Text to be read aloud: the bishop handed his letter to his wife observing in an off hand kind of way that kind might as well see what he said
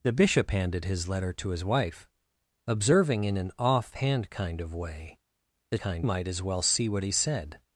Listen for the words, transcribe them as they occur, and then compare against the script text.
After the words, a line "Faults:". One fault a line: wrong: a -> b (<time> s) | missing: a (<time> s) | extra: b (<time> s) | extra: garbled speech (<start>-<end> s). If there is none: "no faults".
the bishop handed his letter to his wife observing in an off hand kind of way that kind might as well see what he said
Faults:
no faults